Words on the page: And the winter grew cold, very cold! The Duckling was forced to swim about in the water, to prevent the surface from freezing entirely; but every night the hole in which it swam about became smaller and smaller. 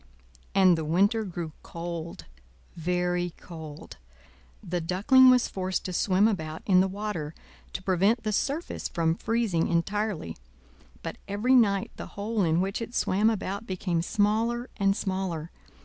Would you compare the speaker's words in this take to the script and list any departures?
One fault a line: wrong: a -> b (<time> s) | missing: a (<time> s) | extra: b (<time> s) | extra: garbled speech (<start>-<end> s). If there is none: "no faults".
no faults